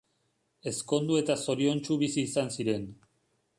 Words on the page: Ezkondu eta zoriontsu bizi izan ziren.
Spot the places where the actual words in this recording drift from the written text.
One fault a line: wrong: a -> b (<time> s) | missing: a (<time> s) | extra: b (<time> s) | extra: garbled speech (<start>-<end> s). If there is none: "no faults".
no faults